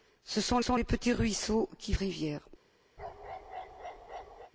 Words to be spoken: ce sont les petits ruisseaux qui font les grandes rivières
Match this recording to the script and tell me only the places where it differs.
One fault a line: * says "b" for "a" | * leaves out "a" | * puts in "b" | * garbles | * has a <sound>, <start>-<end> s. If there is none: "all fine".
* puts in "sont"
* leaves out "font les grandes"
* has a bark, 3.0-4.5 s